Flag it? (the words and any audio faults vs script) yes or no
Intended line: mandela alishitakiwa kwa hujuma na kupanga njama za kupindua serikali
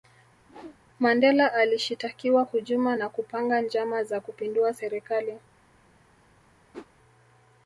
yes